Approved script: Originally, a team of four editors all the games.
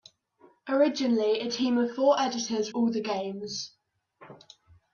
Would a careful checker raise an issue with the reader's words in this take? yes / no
no